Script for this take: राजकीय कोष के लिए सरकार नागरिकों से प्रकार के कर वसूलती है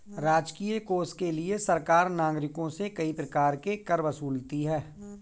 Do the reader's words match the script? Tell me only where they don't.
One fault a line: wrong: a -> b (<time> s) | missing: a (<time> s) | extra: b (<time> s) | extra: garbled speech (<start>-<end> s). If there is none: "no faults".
extra: कई (2.9 s)